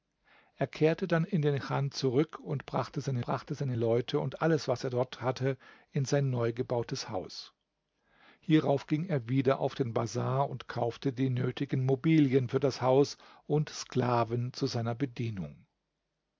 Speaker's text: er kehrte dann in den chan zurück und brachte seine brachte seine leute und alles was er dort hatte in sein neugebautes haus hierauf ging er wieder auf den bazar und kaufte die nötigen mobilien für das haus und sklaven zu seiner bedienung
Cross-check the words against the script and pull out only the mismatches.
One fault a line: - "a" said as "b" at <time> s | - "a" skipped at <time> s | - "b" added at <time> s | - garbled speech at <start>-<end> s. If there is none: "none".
none